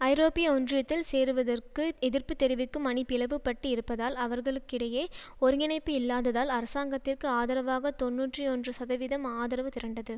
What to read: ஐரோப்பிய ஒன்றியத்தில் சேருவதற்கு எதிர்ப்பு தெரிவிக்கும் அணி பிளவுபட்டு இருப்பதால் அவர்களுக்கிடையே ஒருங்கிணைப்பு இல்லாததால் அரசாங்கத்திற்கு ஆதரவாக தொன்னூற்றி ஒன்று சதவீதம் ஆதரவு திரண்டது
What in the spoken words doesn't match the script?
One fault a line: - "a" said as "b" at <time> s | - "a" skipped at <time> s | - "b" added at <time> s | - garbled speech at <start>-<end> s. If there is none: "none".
none